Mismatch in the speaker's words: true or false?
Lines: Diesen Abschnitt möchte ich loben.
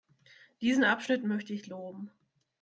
false